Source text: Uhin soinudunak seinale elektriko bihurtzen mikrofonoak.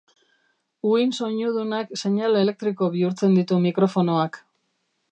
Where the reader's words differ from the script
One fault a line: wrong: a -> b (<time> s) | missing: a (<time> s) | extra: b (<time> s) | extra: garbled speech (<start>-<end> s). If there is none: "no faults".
extra: ditu (3.4 s)